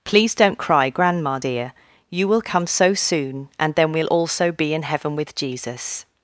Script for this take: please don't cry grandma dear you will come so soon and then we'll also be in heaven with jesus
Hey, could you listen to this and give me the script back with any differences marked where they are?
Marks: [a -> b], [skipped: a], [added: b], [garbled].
please don't cry grandma dear you will come so soon and then we'll also be in heaven with jesus